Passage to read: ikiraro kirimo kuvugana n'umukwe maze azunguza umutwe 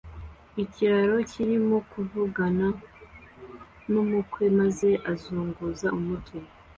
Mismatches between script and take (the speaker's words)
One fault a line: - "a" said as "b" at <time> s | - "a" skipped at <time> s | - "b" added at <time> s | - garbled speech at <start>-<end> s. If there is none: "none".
none